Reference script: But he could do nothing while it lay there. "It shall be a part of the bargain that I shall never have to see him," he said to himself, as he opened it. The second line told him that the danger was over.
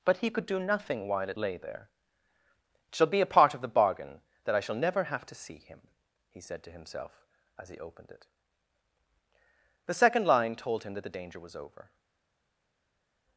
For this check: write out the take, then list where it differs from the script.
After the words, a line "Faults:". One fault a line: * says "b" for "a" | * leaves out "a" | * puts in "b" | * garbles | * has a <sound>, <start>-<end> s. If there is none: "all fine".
But he could do nothing while it lay there. "It shall be a part of the bargain that I shall never have to see him," he said to himself, as he opened it. The second line told him that the danger was over.
Faults:
all fine